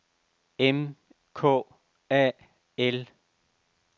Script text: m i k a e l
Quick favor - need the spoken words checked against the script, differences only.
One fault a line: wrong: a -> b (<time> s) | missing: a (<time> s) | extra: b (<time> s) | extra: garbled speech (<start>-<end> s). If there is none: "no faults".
missing: i (0.9 s)
missing: e (2.3 s)